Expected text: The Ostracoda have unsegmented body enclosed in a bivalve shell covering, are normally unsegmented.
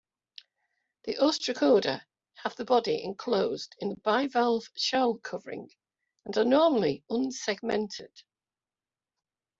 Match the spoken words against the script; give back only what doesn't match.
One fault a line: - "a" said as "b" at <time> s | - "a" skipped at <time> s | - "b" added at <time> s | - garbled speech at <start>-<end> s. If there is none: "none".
- "unsegmented" said as "the" at 2.5 s
- "and" added at 6.2 s